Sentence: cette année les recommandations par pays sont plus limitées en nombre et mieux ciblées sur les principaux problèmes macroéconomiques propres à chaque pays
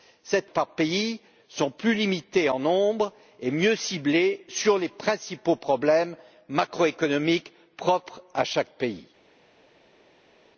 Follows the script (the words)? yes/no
no